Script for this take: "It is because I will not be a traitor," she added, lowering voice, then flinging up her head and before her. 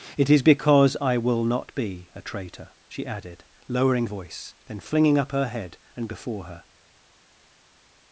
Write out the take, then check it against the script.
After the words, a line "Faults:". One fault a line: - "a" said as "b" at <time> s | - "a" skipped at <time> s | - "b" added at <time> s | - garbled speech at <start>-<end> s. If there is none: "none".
"It is because I will not be a traitor," she added, lowering voice, then flinging up her head and before her.
Faults:
none